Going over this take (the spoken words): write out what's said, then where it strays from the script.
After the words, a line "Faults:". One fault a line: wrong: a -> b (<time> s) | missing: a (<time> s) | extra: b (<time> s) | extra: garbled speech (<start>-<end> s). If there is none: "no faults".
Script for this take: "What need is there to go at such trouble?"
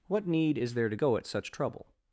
"What need is there to go at such trouble?"
Faults:
no faults